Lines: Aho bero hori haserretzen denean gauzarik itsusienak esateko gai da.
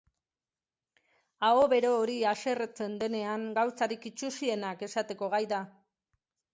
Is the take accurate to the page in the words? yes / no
yes